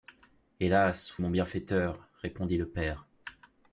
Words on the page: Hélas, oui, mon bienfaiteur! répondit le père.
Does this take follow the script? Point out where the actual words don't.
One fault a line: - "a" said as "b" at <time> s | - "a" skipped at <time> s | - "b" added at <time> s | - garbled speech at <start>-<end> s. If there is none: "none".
- "oui" skipped at 1.2 s